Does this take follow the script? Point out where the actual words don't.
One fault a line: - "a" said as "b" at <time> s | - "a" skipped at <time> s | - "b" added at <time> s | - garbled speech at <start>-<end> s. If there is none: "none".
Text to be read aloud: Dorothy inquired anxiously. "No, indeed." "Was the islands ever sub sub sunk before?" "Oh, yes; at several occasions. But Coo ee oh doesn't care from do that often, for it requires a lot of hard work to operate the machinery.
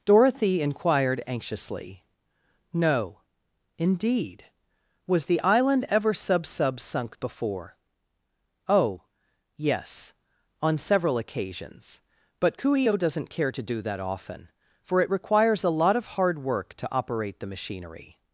- "islands" said as "island" at 5.4 s
- "at" said as "on" at 10.6 s
- "from" said as "to" at 13.5 s